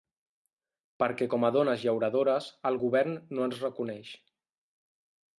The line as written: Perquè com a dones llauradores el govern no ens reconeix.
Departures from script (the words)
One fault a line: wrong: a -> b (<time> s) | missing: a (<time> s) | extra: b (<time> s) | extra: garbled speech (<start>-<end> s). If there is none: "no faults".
no faults